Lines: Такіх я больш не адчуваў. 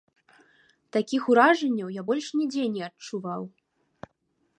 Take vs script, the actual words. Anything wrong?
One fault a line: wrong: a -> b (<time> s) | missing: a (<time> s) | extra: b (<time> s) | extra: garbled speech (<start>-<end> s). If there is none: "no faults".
extra: уражанняў (1.3 s)
extra: нідзе (2.4 s)